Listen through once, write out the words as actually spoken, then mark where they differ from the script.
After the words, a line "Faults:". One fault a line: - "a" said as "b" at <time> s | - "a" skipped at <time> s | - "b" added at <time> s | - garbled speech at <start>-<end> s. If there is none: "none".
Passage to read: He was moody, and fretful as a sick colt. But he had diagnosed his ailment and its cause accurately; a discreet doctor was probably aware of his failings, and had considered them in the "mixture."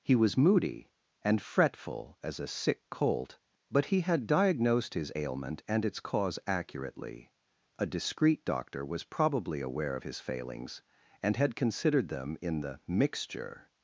He was moody, and fretful as a sick colt. But he had diagnosed his ailment and its cause accurately; a discreet doctor was probably aware of his failings, and had considered them in the "mixture."
Faults:
none